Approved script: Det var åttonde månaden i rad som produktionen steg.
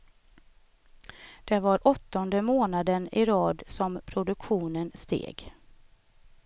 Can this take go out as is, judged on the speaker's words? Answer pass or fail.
pass